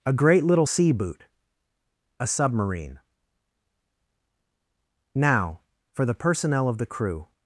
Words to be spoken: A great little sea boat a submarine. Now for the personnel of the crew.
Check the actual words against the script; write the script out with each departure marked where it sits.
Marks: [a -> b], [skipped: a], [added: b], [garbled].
A great little sea [boat -> boot] a submarine. Now for the personnel of the crew.